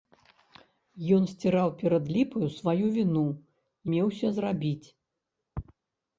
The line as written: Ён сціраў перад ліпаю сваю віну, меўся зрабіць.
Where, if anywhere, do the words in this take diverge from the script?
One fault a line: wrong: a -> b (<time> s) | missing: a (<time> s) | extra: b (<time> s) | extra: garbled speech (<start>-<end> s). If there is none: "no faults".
no faults